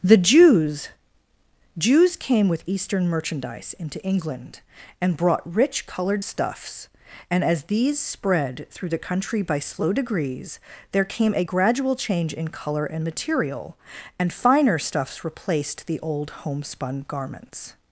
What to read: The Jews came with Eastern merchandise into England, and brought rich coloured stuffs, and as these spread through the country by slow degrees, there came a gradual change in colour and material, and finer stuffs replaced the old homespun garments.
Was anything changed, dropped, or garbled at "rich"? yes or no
no